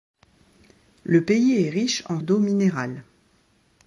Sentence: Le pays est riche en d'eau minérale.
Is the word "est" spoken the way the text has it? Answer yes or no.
yes